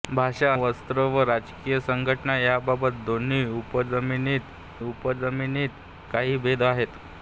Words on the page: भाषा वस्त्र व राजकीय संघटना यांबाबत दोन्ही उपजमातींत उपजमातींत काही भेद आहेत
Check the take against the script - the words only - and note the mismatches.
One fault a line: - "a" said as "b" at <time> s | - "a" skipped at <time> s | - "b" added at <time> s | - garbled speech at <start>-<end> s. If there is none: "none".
none